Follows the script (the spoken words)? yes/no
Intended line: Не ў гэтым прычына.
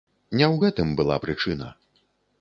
no